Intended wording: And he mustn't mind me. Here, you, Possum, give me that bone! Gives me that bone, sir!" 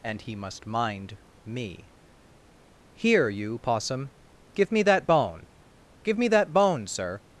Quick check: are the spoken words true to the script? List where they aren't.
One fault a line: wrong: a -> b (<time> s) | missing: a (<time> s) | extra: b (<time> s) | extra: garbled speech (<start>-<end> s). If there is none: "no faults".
wrong: mustn't -> must (0.3 s)
wrong: Gives -> Give (6.0 s)